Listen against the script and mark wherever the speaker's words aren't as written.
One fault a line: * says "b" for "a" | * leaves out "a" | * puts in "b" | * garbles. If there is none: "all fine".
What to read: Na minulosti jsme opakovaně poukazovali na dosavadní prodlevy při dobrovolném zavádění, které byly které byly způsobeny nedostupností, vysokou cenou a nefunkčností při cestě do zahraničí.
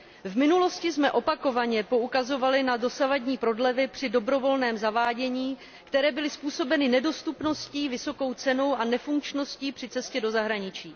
* says "V" for "Na"
* leaves out "které byly"